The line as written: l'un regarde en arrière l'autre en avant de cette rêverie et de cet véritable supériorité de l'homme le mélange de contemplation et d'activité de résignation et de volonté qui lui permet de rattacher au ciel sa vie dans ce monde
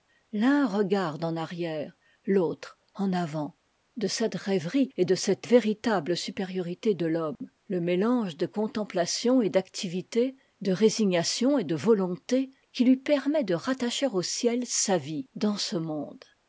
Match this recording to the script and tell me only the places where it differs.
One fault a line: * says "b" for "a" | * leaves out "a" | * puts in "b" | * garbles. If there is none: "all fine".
all fine